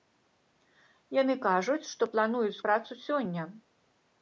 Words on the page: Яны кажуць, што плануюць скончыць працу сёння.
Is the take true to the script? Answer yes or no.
no